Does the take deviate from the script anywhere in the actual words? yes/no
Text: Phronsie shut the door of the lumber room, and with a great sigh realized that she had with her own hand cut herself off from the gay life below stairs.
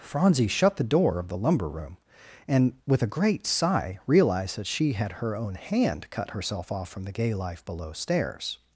yes